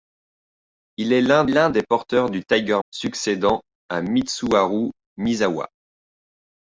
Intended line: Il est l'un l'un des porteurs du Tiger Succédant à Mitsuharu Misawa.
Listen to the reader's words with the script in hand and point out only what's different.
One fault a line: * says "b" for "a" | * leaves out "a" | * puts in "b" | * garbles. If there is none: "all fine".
all fine